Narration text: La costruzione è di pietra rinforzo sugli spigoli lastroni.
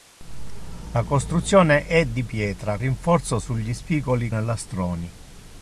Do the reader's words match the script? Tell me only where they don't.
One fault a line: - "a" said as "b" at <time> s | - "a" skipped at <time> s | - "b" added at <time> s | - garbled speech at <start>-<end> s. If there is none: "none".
none